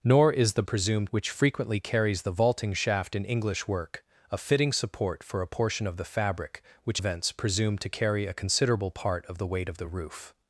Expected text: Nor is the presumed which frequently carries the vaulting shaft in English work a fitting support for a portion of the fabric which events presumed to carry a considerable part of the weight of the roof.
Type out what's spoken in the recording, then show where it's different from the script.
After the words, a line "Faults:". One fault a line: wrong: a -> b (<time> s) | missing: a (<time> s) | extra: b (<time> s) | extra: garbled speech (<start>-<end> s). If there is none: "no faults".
Nor is the presumed which frequently carries the vaulting shaft in English work a fitting support for a portion of the fabric which events presumed to carry a considerable part of the weight of the roof.
Faults:
no faults